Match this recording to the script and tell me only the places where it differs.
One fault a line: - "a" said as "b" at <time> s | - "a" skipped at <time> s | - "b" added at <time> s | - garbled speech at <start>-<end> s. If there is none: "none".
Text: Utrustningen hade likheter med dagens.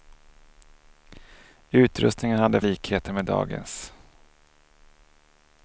none